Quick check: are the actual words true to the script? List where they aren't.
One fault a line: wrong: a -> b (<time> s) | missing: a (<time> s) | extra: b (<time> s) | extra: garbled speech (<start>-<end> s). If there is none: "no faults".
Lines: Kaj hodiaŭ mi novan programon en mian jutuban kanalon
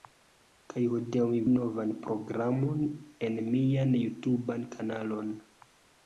no faults